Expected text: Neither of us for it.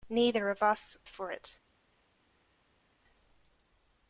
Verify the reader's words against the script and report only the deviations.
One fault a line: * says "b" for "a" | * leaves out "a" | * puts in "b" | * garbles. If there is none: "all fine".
all fine